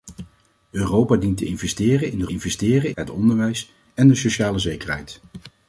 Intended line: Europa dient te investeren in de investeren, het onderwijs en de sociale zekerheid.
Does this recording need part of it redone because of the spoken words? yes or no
no